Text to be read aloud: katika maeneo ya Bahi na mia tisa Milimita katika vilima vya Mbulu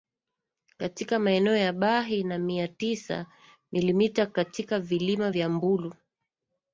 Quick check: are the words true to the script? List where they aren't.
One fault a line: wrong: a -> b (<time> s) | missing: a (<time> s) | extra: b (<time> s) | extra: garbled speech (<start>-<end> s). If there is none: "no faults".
no faults